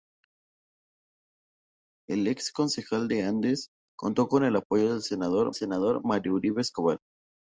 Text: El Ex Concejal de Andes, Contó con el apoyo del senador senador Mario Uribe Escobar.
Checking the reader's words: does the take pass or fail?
pass